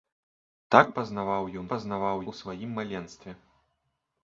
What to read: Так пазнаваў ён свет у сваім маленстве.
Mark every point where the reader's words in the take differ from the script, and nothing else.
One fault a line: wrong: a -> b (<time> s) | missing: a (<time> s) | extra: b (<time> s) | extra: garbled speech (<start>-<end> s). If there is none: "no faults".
wrong: свет -> пазнаваў (1.7 s)